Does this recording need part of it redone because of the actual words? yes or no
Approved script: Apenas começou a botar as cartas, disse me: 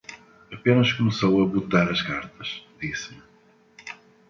no